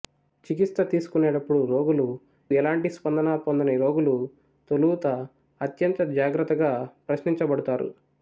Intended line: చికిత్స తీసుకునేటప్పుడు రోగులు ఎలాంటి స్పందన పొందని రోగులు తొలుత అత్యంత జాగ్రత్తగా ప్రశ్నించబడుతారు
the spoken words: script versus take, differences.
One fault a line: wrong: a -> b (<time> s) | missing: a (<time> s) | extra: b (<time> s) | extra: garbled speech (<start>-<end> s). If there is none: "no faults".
no faults